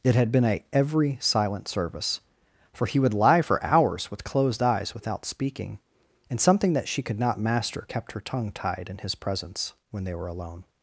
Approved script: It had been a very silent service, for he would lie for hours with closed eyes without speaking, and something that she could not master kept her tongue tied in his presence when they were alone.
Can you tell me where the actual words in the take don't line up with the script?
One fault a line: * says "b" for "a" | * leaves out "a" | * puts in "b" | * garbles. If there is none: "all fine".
* says "every" for "very"